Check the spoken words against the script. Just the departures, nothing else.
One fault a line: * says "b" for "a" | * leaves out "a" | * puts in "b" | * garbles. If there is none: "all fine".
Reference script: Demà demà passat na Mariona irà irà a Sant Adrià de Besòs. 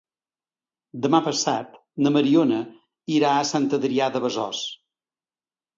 * leaves out "demà"
* leaves out "irà"